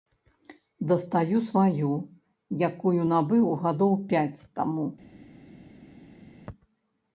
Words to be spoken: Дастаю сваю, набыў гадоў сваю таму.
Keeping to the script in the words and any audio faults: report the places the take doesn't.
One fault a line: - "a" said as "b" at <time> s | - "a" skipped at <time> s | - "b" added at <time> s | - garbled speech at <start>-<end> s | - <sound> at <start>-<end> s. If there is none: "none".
- "якую" added at 2.7 s
- "сваю" said as "пяць" at 4.1 s